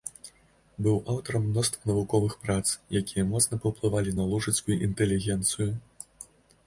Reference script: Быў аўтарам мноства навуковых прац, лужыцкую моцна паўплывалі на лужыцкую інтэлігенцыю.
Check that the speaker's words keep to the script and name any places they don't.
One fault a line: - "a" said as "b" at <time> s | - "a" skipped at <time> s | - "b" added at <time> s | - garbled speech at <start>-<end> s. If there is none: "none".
- "лужыцкую" said as "якія" at 3.0 s